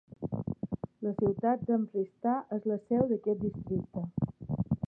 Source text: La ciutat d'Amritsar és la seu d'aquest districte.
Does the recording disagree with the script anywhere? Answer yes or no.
no